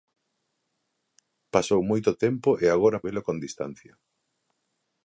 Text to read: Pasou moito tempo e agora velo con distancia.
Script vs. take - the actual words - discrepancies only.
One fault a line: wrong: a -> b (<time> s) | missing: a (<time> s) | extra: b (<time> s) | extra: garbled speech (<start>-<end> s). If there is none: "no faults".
no faults